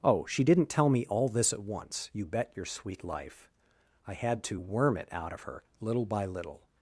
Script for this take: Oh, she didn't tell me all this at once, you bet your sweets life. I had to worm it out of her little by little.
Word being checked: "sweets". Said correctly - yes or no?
no